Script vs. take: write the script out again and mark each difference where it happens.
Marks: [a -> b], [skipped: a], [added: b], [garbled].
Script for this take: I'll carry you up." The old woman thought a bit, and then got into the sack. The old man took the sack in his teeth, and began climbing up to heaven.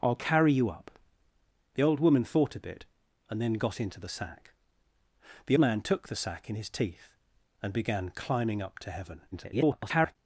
I'll carry you up." The old woman thought a bit, and then got into the sack. The [skipped: old] man took the sack in his teeth, and began climbing up to heaven. [garbled]